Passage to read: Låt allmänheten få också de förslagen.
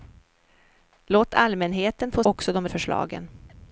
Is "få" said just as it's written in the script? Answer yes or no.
yes